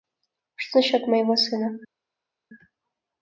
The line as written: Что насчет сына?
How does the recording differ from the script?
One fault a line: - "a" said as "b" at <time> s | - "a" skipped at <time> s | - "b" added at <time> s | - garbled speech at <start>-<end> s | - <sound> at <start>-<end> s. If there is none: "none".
- "моего" added at 1.1 s